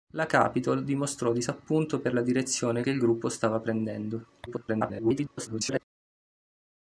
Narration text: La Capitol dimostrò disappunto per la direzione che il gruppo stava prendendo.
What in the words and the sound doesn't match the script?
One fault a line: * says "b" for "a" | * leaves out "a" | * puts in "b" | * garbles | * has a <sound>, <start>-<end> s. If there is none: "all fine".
* garbles